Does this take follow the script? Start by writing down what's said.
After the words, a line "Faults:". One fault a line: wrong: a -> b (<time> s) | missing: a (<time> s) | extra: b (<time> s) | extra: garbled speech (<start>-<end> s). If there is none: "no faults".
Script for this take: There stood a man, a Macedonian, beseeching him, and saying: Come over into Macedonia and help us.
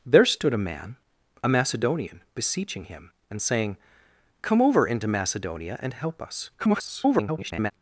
There stood a man, a Macedonian, beseeching him, and saying: Come over into Macedonia and help us. [garbled]
Faults:
extra: garbled speech (6.6-7.7 s)